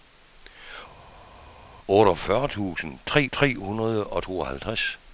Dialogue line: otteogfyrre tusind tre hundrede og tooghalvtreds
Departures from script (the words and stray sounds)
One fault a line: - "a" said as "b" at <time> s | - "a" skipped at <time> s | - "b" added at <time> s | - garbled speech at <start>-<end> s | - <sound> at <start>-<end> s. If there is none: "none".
- "tre" added at 3.3 s